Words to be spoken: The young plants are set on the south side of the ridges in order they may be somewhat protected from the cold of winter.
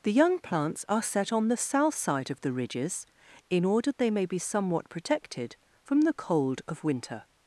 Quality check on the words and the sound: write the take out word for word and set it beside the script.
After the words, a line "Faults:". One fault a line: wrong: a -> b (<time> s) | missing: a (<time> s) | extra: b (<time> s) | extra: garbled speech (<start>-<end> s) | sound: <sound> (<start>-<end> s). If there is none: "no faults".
The young plants are set on the south side of the ridges in order they may be somewhat protected from the cold of winter.
Faults:
no faults